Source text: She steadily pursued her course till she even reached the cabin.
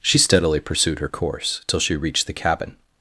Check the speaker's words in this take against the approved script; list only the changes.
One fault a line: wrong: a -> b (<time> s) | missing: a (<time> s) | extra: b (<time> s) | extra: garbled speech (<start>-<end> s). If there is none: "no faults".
missing: even (1.9 s)